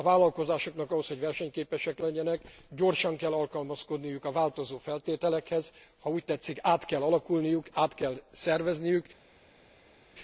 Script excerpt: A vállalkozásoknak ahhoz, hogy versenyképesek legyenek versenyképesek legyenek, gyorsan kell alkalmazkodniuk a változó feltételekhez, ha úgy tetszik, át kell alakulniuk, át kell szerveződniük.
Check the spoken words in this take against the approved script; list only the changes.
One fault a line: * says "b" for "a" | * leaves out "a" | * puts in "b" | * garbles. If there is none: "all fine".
* leaves out "versenyképesek legyenek"